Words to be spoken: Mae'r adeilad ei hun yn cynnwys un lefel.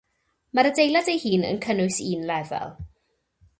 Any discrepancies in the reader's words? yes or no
no